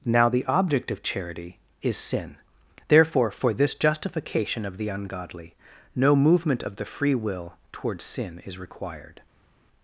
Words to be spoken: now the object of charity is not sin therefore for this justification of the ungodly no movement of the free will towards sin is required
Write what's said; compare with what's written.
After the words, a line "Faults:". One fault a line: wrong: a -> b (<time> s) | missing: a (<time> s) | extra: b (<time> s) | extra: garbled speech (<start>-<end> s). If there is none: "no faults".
now the object of charity is sin therefore for this justification of the ungodly no movement of the free will towards sin is required
Faults:
missing: not (2.0 s)